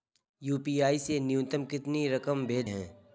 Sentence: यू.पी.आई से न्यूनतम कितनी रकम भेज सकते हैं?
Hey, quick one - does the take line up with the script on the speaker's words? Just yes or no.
no